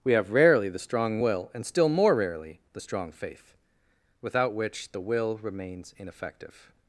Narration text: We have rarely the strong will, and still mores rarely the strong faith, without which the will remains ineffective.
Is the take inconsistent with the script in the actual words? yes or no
yes